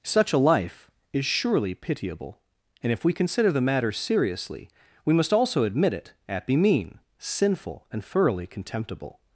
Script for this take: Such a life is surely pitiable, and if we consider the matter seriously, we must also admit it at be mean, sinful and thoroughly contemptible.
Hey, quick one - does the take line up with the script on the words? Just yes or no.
yes